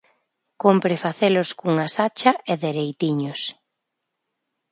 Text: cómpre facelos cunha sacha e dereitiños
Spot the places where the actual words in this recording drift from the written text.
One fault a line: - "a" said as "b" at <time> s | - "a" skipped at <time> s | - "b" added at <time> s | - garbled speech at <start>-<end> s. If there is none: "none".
none